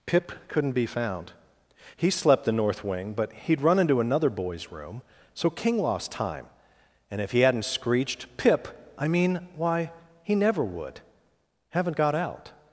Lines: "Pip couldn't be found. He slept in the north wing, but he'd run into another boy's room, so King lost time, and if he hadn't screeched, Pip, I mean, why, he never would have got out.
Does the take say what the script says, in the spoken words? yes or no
no